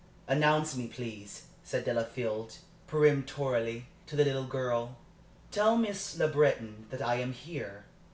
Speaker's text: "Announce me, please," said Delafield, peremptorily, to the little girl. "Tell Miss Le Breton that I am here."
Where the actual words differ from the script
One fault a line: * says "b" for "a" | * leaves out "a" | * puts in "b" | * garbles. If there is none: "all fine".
all fine